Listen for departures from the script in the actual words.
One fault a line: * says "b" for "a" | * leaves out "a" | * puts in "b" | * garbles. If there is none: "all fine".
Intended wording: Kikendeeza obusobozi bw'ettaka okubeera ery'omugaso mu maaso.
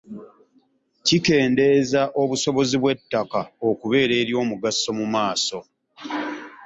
all fine